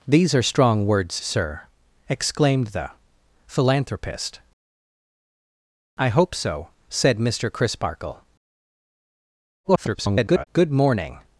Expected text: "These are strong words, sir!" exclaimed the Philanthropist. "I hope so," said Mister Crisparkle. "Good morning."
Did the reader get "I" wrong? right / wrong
right